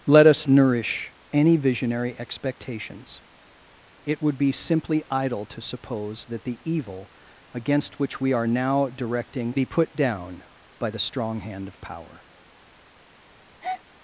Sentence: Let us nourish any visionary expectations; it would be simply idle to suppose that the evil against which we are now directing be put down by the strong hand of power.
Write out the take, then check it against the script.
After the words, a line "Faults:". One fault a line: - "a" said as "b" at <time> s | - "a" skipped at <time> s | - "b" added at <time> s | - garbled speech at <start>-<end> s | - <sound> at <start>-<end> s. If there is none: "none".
Let us nourish any visionary expectations; it would be simply idle to suppose that the evil against which we are now directing be put down by the strong hand of power.
Faults:
- breath at 13.6-13.8 s